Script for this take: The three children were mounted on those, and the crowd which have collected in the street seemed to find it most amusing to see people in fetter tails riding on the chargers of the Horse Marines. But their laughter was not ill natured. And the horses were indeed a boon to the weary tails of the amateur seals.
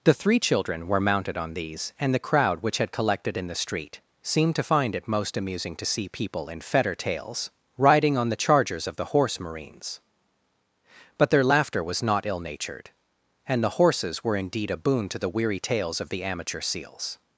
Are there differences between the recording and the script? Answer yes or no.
yes